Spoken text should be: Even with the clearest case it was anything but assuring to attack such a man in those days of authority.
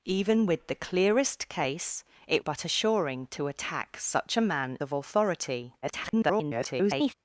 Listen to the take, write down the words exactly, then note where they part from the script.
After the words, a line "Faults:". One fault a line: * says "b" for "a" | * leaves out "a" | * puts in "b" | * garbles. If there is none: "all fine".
Even with the clearest case it but assuring to attack such a man of authority. [garbled]
Faults:
* leaves out "was anything"
* leaves out "in those days"
* garbles